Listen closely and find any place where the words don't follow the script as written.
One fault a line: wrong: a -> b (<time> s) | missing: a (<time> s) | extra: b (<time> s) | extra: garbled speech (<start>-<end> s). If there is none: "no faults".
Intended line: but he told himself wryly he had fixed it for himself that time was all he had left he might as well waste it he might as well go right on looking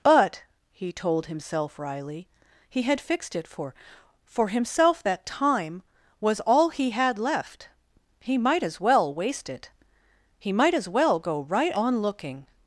extra: for (4.2 s)